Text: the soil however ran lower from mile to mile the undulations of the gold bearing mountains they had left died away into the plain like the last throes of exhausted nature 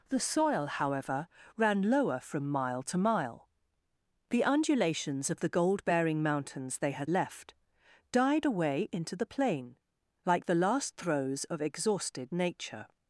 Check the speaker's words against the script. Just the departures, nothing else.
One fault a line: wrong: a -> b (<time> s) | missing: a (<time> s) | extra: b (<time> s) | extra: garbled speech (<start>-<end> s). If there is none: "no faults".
no faults